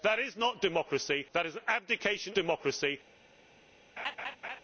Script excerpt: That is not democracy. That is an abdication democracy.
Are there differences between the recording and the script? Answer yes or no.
no